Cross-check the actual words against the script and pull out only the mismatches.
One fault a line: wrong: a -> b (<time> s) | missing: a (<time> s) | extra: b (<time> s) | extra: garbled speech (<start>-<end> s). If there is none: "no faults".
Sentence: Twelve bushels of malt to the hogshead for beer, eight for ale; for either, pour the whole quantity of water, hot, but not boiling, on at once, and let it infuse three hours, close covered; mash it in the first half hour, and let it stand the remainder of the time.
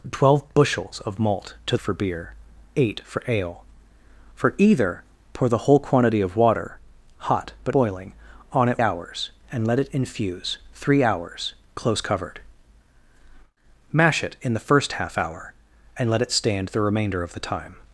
missing: the hogshead (1.8 s)
missing: not (7.7 s)
wrong: once -> hours (8.8 s)